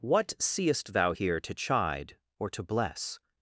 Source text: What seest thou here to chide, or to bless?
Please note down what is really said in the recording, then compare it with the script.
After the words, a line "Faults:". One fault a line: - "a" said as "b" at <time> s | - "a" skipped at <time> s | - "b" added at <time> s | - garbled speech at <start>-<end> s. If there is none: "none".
What seest thou here to chide, or to bless?
Faults:
none